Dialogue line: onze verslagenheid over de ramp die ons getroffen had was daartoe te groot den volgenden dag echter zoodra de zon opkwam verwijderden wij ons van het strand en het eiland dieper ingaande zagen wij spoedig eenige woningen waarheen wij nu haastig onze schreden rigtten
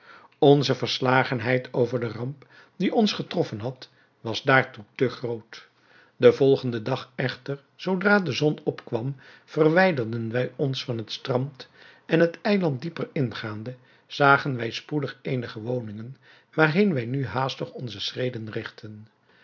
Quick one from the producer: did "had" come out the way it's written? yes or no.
yes